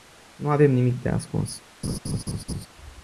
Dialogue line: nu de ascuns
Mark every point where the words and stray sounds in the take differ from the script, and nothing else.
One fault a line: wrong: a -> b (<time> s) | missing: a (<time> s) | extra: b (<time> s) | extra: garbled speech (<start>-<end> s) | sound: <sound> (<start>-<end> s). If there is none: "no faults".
extra: avem nimic (0.5 s)
sound: laugh (1.8-2.7 s)